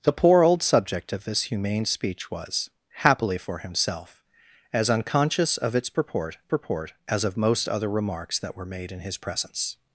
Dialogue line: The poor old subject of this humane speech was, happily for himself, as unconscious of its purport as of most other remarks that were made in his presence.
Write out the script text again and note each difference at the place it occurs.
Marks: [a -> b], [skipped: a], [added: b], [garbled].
The poor old subject of this humane speech was, happily for himself, as unconscious of its purport [added: purport] as of most other remarks that were made in his presence.